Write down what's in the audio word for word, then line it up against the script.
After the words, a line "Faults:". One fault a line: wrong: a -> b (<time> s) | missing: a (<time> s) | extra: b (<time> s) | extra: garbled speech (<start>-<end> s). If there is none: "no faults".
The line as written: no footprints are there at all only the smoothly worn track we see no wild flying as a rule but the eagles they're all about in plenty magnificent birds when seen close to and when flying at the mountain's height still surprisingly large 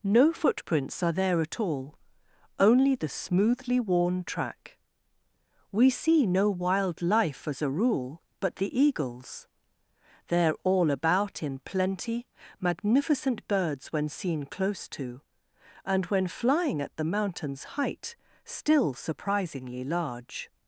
no footprints are there at all only the smoothly worn track we see no wild life as a rule but the eagles they're all about in plenty magnificent birds when seen close to and when flying at the mountain's height still surprisingly large
Faults:
wrong: flying -> life (7.0 s)